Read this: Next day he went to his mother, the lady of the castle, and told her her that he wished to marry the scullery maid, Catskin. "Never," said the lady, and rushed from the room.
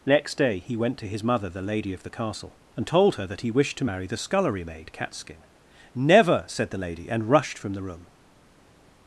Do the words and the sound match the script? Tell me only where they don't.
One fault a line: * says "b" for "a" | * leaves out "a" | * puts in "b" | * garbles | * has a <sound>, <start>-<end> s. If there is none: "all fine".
* leaves out "her"